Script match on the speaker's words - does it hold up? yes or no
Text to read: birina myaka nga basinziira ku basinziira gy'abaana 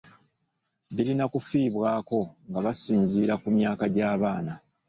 no